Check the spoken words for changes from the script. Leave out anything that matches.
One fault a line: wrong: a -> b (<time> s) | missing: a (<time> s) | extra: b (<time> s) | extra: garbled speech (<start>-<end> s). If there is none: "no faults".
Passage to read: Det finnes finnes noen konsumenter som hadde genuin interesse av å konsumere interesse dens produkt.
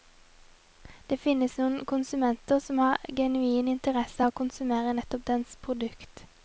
missing: finnes (1.6 s)
wrong: hadde -> har (2.9 s)
wrong: interesse -> nettopp (5.0 s)